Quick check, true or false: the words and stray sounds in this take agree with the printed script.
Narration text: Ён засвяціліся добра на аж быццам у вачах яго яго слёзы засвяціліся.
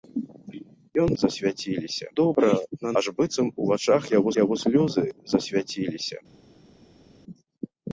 true